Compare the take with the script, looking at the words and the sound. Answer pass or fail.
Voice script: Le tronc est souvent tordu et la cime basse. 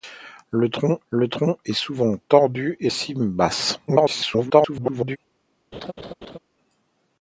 fail